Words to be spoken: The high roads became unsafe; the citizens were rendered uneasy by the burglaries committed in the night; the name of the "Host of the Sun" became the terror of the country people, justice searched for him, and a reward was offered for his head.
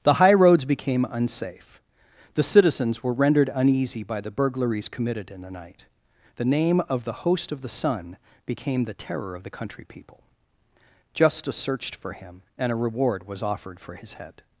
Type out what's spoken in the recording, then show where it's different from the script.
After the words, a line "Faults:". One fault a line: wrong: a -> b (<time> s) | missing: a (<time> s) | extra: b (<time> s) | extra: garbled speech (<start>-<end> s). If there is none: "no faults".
The high roads became unsafe; the citizens were rendered uneasy by the burglaries committed in the night; the name of the "Host of the Sun" became the terror of the country people, justice searched for him, and a reward was offered for his head.
Faults:
no faults